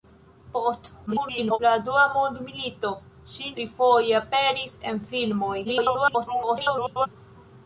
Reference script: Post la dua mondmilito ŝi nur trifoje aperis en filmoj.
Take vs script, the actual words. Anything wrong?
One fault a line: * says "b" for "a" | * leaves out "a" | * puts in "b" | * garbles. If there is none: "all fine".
* garbles
* leaves out "nur"
* garbles